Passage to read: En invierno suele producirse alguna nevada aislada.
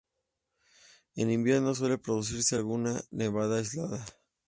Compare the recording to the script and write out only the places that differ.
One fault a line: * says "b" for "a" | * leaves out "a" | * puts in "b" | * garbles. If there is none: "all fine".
all fine